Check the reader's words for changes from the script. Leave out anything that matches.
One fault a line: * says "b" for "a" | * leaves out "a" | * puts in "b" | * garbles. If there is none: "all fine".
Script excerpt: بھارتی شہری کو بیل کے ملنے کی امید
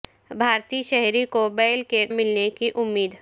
all fine